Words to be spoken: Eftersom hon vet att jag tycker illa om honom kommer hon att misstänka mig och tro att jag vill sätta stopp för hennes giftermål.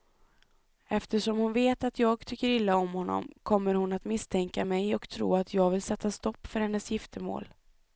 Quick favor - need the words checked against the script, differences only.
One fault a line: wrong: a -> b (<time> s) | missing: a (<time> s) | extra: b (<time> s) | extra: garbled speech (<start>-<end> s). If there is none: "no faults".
no faults